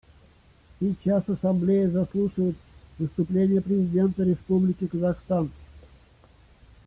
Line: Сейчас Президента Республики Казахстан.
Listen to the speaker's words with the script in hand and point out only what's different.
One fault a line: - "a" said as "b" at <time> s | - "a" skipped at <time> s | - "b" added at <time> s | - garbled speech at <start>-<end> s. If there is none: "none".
- "Ассамблея заслушает выступление" added at 1.3 s